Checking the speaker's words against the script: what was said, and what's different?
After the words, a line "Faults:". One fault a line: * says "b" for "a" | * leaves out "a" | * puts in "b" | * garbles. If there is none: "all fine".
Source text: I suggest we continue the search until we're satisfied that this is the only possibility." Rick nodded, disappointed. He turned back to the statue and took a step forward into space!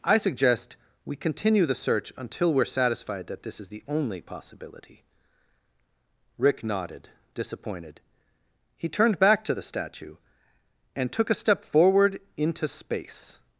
I suggest we continue the search until we're satisfied that this is the only possibility." Rick nodded, disappointed. He turned back to the statue and took a step forward into space!
Faults:
all fine